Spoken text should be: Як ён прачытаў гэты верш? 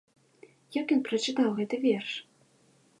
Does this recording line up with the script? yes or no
yes